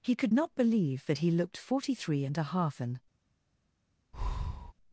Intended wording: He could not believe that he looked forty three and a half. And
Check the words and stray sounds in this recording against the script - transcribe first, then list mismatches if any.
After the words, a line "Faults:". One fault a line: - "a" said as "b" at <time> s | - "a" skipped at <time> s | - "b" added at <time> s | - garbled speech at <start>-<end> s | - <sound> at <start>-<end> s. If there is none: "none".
He could not believe that he looked forty three and a half. And
Faults:
- breath at 4.1-4.7 s